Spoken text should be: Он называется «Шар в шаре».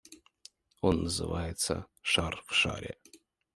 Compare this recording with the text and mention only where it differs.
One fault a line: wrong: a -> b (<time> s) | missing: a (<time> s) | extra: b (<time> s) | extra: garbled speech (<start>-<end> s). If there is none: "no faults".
no faults